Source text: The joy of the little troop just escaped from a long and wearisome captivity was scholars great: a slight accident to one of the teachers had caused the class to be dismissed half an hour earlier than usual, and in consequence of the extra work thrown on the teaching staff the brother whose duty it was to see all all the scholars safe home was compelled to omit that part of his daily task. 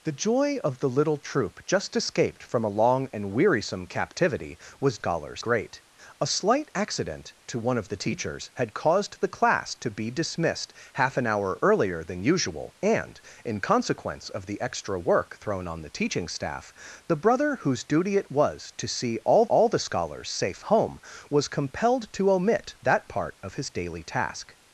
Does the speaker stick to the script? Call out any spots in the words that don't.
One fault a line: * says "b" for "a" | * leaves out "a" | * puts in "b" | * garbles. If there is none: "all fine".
all fine